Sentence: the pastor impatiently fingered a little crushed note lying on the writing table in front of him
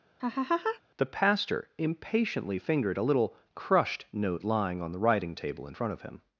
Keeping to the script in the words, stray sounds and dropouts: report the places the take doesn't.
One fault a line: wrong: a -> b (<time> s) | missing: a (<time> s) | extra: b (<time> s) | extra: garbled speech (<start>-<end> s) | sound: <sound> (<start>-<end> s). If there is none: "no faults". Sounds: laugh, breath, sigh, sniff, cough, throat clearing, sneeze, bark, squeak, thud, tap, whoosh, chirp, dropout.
sound: laugh (0.2-0.8 s)